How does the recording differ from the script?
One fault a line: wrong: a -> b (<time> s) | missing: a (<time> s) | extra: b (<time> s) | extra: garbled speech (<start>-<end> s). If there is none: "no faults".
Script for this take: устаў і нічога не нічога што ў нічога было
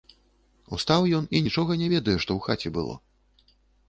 extra: ён (1.2 s)
wrong: нічога -> ведае (1.9 s)
wrong: нічога -> хаце (2.5 s)